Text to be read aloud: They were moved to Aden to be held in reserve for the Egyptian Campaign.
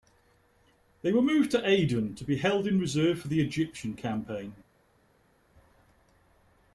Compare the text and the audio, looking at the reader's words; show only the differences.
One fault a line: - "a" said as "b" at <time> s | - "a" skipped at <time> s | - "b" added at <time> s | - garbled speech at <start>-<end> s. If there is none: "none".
none